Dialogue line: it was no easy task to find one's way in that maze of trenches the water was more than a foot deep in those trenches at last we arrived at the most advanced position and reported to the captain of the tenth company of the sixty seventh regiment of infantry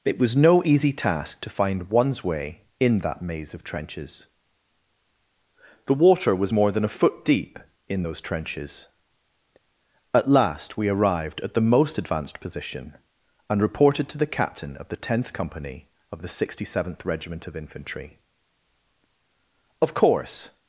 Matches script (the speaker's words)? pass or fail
fail